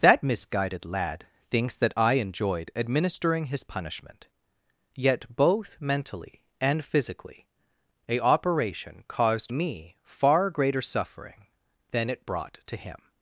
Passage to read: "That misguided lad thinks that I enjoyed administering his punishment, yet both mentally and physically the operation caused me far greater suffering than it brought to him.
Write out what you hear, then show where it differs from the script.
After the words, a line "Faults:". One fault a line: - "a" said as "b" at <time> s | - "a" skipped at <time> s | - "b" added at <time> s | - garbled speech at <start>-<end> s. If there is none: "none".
"That misguided lad thinks that I enjoyed administering his punishment, yet both mentally and physically a operation caused me far greater suffering than it brought to him.
Faults:
- "the" said as "a" at 8.1 s